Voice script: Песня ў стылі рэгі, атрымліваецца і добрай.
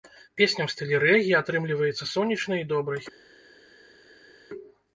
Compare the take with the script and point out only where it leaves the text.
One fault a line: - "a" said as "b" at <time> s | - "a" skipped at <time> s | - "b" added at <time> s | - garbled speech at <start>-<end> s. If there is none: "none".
- "сонечнай" added at 2.1 s